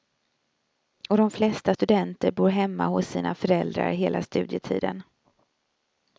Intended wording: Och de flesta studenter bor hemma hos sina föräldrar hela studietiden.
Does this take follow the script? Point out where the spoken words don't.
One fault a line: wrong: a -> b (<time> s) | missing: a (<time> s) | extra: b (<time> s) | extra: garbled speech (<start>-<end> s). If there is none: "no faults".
no faults